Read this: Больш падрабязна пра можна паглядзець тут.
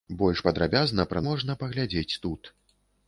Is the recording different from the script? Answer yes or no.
no